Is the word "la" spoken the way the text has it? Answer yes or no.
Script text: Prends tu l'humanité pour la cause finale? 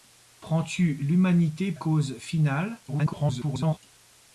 no